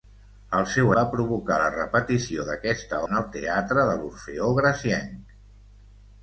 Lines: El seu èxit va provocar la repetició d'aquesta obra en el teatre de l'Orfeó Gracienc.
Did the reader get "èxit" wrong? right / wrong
wrong